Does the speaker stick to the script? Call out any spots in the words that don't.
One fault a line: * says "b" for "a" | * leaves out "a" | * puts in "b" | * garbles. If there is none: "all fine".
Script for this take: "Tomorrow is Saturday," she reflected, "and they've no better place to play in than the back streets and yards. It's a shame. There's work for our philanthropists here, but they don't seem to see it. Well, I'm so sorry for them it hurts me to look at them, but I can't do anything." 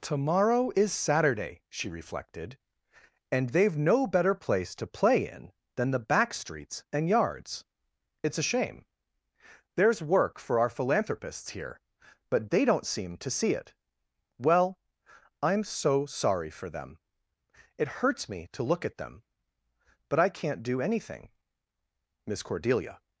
* puts in "Miss Cordelia"